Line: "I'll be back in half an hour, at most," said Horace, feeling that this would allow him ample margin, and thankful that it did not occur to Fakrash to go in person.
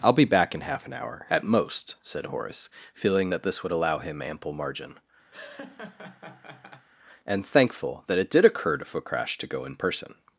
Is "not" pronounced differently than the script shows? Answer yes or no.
yes